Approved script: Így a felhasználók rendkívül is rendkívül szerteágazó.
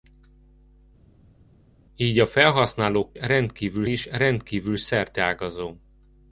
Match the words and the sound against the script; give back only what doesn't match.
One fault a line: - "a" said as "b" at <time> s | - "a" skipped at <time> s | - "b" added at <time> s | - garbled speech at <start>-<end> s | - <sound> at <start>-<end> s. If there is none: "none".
none